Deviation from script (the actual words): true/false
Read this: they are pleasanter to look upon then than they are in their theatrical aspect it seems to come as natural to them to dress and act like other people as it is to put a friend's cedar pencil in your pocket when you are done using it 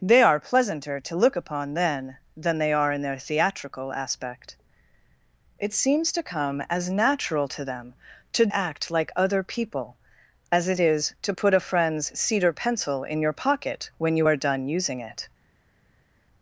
true